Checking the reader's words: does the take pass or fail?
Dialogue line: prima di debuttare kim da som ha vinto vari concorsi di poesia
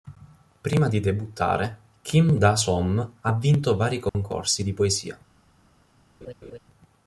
pass